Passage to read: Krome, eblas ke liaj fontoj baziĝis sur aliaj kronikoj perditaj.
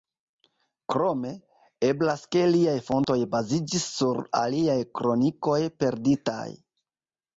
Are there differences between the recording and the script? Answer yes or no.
no